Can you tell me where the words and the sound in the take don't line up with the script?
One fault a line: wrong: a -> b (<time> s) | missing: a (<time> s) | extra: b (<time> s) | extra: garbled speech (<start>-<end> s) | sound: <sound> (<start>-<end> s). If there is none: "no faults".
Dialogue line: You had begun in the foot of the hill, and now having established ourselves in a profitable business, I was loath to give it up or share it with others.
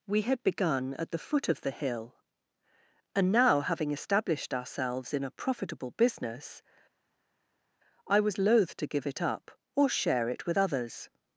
wrong: You -> We (0.1 s)
wrong: in -> at (0.9 s)